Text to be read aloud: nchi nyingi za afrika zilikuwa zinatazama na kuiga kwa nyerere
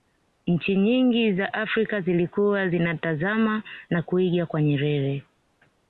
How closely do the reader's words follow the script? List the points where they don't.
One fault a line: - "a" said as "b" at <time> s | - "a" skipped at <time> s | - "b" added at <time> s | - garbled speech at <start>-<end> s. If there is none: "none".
none